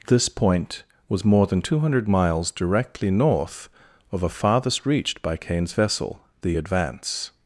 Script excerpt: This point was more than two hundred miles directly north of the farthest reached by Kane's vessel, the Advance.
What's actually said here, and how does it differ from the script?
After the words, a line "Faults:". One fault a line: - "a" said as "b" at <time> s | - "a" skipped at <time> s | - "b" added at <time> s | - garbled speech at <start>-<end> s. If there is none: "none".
This point was more than two hundred miles directly north of a farthest reached by Kane's vessel, the Advance.
Faults:
- "the" said as "a" at 4.2 s